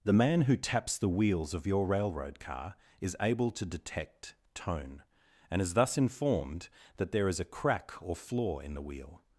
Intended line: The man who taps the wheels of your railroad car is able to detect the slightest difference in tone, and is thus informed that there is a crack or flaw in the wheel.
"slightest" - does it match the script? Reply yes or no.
no